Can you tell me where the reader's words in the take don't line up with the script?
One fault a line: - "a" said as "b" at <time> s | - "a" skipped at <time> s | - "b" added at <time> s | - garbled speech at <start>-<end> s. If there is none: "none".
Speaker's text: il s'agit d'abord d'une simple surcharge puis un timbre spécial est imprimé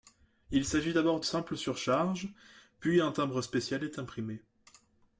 - "d'une" skipped at 1.2 s